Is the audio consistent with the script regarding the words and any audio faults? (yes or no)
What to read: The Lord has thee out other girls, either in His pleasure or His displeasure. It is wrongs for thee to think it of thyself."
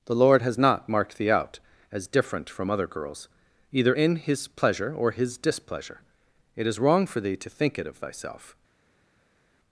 no